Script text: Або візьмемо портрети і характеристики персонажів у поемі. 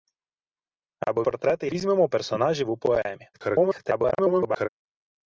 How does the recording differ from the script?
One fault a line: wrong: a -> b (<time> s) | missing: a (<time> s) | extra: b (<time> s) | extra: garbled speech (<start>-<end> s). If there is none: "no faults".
missing: візьмемо (1.2 s)
wrong: характеристики -> візьмемо (1.7 s)
extra: garbled speech (3.3-4.7 s)